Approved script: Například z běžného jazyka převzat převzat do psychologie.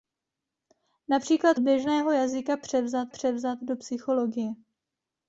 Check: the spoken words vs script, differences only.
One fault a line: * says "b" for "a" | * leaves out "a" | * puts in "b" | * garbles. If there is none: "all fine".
all fine